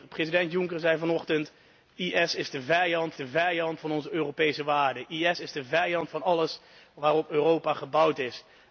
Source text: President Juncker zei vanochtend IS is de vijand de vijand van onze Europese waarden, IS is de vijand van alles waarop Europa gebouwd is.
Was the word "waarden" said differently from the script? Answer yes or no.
no